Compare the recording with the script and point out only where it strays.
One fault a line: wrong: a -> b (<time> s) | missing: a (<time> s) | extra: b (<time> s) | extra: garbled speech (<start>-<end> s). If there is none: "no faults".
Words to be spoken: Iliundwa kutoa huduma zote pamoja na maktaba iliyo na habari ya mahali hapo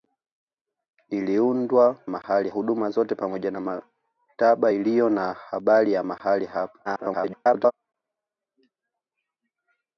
wrong: kutoa -> mahali (2.1 s)
extra: garbled speech (6.8-7.7 s)